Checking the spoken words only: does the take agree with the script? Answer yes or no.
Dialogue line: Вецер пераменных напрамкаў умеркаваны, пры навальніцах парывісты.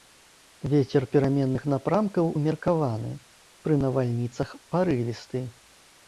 yes